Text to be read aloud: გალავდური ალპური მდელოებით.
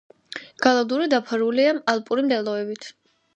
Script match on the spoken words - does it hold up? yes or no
no